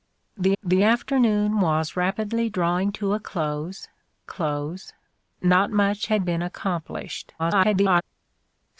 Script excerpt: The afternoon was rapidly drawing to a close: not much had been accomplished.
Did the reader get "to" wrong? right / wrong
right